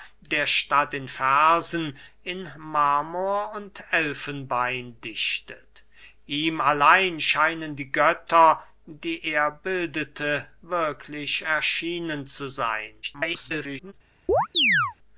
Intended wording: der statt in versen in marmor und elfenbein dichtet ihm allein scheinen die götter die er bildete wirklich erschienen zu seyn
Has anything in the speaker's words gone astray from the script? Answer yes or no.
yes